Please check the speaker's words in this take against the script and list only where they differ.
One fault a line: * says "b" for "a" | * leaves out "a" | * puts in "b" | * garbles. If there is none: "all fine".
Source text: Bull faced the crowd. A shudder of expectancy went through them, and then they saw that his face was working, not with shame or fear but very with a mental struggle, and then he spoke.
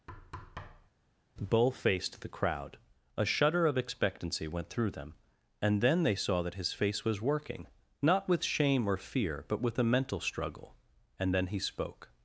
* leaves out "very"